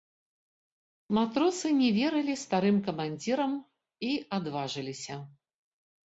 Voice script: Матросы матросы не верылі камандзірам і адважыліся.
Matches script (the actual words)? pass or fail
fail